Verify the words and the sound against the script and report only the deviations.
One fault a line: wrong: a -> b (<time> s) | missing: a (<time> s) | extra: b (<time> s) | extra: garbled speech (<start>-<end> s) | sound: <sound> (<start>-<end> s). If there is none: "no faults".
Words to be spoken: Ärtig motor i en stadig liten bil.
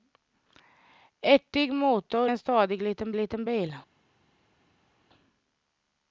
missing: i (2.3 s)
extra: liten (3.1 s)